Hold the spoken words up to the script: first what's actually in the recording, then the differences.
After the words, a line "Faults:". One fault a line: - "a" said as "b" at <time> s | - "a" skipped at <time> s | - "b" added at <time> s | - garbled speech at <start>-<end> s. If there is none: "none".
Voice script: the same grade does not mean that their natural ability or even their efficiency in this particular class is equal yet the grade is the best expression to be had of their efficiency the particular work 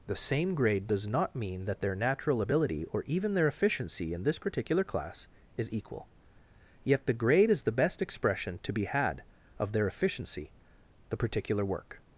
the same grade does not mean that their natural ability or even their efficiency in this particular class is equal yet the grade is the best expression to be had of their efficiency the particular work
Faults:
none